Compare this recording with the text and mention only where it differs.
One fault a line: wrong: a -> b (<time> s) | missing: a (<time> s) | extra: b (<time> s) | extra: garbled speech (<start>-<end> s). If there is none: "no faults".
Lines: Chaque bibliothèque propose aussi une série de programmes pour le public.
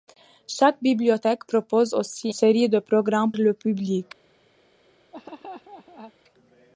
missing: une (2.3 s)
missing: pour (3.3 s)